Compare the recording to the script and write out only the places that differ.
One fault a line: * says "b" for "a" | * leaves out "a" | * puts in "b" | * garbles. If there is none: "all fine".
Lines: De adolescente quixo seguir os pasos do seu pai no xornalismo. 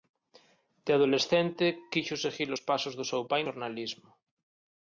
* leaves out "no"